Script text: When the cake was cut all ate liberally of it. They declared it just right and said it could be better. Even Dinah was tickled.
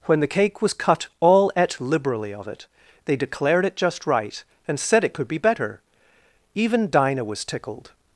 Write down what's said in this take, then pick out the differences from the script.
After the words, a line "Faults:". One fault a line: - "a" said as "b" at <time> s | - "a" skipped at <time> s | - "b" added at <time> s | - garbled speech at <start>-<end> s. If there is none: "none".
When the cake was cut all ate liberally of it. They declared it just right and said it could be better. Even Dinah was tickled.
Faults:
none